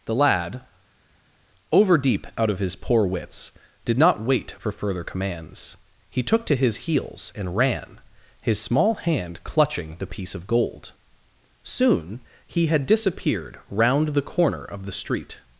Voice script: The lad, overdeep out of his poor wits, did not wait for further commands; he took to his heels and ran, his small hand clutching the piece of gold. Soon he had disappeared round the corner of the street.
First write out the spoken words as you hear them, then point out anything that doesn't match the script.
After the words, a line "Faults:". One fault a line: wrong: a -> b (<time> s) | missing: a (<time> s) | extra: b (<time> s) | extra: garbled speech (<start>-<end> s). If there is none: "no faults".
The lad, overdeep out of his poor wits, did not wait for further commands; he took to his heels and ran, his small hand clutching the piece of gold. Soon he had disappeared round the corner of the street.
Faults:
no faults